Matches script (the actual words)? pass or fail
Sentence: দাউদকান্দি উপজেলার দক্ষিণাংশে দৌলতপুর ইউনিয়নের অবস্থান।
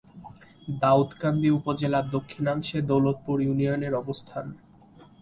pass